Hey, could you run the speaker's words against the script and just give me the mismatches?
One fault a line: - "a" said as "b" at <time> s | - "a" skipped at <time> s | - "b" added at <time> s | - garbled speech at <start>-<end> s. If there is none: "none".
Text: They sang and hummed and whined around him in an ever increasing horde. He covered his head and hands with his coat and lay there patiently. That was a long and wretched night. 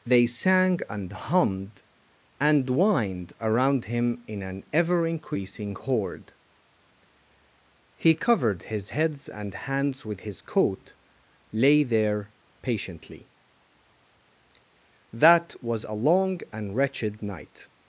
- "head" said as "heads" at 8.9 s
- "and" skipped at 10.9 s